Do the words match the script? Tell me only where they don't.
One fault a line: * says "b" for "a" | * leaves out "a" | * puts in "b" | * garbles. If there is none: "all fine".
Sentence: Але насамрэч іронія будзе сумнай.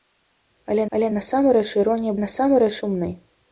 * puts in "але"
* says "насамрэч" for "будзе"